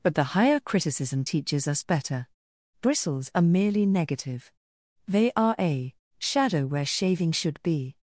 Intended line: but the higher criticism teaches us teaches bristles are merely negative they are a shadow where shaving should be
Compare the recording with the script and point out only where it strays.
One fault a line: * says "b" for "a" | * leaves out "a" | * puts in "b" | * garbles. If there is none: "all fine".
* says "better" for "teaches"